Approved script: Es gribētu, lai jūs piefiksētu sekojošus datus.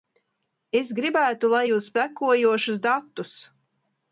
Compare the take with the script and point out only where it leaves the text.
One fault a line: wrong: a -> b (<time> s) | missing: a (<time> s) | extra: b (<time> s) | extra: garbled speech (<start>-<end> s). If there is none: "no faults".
missing: piefiksētu (1.9 s)